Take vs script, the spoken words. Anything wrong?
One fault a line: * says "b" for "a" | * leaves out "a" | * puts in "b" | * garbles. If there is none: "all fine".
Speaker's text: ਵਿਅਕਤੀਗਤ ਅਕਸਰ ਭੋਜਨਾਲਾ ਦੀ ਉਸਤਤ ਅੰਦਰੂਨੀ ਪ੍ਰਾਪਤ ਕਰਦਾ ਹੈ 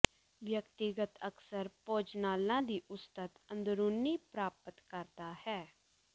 all fine